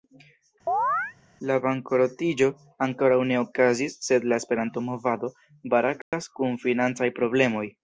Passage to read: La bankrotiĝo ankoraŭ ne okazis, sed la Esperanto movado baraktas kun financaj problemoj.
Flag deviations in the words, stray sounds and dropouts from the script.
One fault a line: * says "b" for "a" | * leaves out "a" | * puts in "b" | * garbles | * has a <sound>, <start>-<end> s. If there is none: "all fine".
* has a chirp, 0.7-1.1 s
* has a dropout, 6.0-6.1 s